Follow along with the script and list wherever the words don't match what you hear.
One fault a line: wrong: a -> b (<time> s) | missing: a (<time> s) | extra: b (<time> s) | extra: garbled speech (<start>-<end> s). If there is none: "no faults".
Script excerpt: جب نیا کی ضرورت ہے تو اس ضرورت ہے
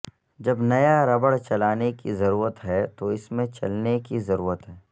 extra: ربڑ چلانے (1.1 s)
extra: میں چلنے کی (3.3 s)